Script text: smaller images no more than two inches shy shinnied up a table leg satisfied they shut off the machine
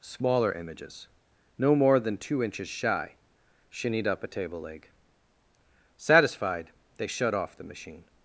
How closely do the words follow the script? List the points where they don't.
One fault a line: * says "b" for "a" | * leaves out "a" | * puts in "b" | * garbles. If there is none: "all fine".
all fine